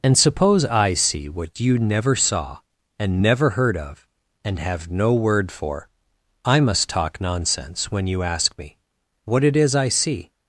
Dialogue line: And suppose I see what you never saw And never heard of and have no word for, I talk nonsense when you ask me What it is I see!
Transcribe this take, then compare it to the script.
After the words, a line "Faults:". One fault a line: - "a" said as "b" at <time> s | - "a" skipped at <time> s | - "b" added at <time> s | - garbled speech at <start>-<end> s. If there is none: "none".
And suppose I see what you never saw And never heard of and have no word for, I must talk nonsense when you ask me What it is I see!
Faults:
- "must" added at 6.6 s